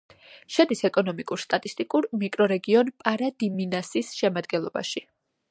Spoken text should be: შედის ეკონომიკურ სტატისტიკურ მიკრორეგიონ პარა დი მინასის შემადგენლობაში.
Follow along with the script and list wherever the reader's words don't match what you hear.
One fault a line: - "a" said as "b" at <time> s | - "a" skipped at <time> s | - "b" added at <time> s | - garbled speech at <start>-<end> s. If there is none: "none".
none